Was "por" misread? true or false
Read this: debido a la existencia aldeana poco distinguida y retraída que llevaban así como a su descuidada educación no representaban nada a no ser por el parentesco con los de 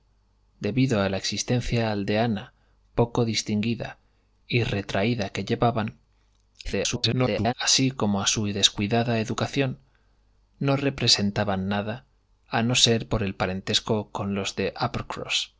false